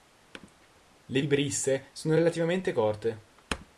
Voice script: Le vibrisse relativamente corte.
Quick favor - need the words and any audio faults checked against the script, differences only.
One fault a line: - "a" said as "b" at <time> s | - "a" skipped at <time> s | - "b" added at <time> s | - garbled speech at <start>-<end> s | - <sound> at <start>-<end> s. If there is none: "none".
- "sono" added at 1.9 s